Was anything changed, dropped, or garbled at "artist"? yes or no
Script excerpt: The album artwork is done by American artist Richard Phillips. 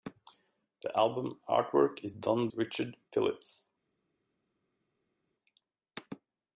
yes